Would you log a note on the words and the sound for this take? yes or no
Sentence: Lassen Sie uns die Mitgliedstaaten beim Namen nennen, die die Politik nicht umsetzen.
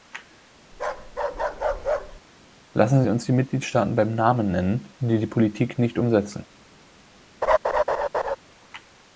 yes